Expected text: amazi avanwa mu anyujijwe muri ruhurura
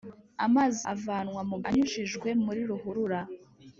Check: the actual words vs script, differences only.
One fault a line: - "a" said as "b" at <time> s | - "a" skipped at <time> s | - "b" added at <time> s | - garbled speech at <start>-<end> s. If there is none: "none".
none